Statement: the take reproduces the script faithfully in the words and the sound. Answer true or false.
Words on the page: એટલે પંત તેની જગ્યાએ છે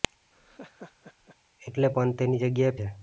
false